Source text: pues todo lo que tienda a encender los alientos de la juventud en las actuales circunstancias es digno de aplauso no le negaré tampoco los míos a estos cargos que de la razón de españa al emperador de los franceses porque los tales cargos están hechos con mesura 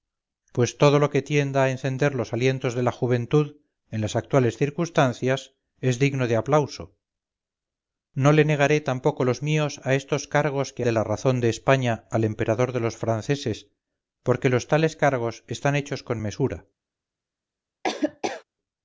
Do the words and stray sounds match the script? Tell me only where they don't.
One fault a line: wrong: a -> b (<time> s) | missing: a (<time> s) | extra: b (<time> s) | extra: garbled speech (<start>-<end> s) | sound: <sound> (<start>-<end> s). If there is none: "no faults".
sound: laugh (17.8-18.4 s)